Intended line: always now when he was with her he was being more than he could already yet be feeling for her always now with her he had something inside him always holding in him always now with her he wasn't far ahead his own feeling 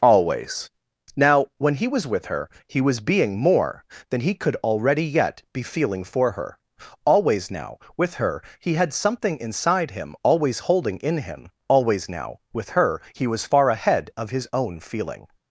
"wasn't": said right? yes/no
no